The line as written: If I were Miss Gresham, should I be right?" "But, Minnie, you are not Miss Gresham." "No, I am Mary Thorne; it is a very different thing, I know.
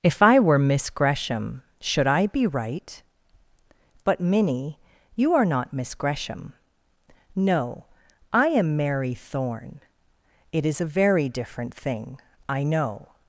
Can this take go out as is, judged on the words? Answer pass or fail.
pass